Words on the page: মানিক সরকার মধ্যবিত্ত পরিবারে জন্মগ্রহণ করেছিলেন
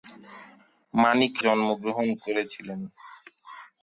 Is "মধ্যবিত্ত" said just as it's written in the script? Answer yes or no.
no